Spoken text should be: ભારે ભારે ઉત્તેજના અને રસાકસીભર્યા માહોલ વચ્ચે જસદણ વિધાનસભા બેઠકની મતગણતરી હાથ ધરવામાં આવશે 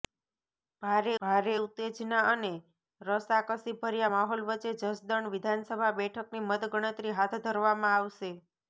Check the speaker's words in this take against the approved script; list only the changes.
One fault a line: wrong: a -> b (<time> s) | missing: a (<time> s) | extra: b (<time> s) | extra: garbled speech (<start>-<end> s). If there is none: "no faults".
no faults